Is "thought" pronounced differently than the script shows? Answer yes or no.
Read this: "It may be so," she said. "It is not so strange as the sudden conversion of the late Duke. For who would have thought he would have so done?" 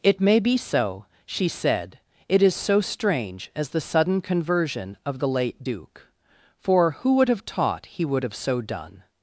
yes